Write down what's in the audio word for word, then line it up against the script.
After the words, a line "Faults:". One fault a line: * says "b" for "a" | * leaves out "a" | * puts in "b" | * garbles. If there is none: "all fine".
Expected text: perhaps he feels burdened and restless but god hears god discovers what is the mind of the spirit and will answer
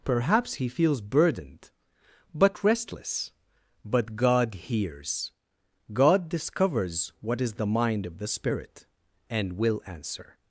perhaps he feels burdened but restless but god hears god discovers what is the mind of the spirit and will answer
Faults:
* says "but" for "and"